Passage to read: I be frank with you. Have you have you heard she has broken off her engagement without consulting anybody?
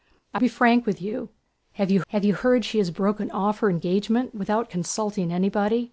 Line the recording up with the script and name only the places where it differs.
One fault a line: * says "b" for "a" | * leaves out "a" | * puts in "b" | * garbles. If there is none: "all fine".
all fine